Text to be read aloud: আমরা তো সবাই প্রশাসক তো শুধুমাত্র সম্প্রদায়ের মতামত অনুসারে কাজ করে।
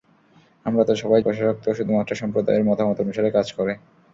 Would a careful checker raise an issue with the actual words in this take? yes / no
no